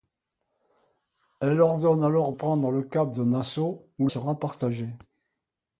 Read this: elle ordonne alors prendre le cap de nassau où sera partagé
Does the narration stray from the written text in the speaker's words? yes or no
no